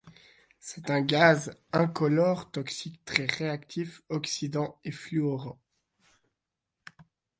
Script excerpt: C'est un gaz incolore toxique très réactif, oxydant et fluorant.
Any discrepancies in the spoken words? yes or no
no